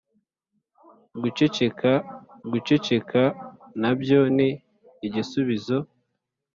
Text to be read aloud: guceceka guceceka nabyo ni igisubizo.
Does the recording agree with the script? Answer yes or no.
yes